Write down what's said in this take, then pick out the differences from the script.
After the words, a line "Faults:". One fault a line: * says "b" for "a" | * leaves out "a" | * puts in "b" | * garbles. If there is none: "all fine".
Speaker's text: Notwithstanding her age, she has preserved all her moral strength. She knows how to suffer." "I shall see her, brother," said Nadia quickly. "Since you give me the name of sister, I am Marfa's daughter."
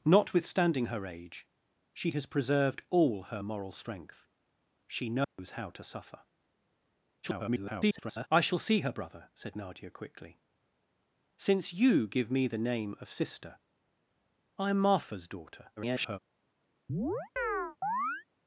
Notwithstanding her age, she has preserved all her moral strength. She knows how to suffer." [garbled] "I shall see her, brother," said Nadia quickly. "Since you give me the name of sister, I am Marfa's daughter." [garbled]
Faults:
* garbles
* garbles